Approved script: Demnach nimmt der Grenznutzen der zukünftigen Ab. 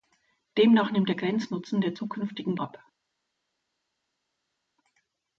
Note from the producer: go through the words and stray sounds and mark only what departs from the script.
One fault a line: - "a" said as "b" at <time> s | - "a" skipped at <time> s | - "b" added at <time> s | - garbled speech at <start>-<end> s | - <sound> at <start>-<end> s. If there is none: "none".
none